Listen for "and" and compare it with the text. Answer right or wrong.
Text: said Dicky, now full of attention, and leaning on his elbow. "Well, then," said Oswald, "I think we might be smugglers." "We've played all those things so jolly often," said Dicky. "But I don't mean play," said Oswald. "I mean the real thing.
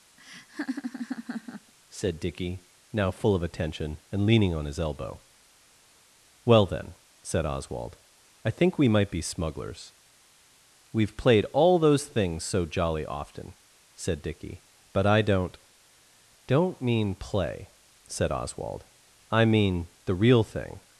right